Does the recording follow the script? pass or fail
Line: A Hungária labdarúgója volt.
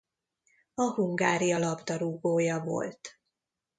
pass